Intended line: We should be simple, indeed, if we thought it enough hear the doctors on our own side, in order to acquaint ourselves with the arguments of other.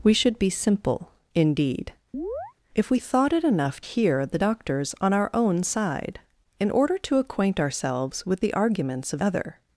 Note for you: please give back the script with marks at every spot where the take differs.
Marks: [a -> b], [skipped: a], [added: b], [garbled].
We should be simple, indeed, if we thought it enough hear the doctors on our own side, in order to acquaint ourselves with the arguments of other.